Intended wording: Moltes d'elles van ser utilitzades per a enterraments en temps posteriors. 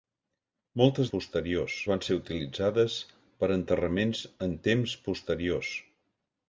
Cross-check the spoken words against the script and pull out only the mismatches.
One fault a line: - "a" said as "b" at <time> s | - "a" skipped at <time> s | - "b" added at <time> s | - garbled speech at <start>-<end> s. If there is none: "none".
- "d'elles" said as "posteriors" at 1.1 s